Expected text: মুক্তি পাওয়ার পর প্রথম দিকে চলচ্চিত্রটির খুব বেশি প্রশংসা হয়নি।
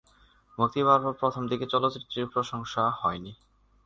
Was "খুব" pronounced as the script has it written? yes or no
no